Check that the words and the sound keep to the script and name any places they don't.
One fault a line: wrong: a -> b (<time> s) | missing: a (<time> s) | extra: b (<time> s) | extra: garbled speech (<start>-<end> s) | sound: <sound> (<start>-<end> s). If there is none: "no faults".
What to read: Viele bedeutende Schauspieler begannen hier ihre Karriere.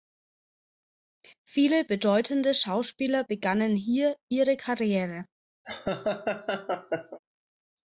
sound: laugh (5.6-7.2 s)